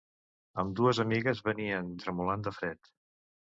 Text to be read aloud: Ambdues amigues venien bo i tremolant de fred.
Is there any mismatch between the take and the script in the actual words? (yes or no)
yes